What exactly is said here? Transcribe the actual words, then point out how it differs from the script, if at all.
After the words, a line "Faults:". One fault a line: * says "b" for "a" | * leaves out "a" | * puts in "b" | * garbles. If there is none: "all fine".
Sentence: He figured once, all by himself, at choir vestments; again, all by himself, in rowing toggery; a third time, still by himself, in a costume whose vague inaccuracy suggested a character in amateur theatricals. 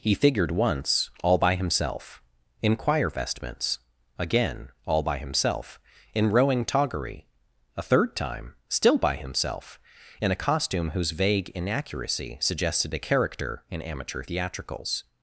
He figured once, all by himself, in choir vestments; again, all by himself, in rowing toggery; a third time, still by himself, in a costume whose vague inaccuracy suggested a character in amateur theatricals.
Faults:
* says "in" for "at"